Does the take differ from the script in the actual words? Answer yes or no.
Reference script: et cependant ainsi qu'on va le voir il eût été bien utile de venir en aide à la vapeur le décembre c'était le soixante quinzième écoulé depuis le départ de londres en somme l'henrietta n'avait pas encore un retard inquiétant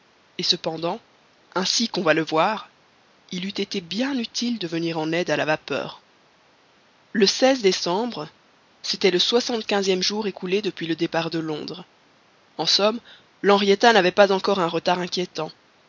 yes